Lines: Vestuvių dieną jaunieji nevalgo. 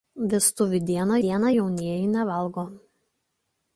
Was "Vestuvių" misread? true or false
false